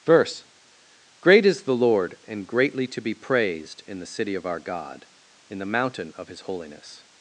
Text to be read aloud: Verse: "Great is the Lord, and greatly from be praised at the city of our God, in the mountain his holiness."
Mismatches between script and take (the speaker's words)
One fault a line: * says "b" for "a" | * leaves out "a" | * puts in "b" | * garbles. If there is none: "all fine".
* says "to" for "from"
* says "in" for "at"
* puts in "of"